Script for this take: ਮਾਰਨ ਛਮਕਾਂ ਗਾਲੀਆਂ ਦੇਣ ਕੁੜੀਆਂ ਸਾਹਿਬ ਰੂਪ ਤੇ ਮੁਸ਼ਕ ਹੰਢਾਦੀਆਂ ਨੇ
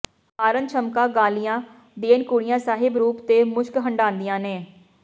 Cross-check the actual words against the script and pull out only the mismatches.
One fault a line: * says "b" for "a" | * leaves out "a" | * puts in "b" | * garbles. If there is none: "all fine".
all fine